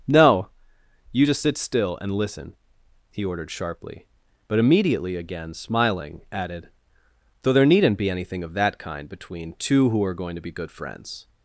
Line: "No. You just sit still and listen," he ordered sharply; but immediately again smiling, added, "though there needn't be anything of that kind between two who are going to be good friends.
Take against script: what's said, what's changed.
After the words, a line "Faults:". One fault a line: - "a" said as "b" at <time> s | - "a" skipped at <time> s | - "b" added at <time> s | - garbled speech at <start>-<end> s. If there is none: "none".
"No. You just sit still and listen," he ordered sharply; but immediately again smiling, added, "though there needn't be anything of that kind between two who are going to be good friends.
Faults:
none